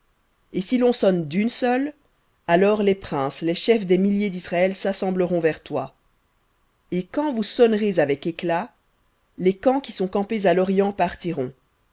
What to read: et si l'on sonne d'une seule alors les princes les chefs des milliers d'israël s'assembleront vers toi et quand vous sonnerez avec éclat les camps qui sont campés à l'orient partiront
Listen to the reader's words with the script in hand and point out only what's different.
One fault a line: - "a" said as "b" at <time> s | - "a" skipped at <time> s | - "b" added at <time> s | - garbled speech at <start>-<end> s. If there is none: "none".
none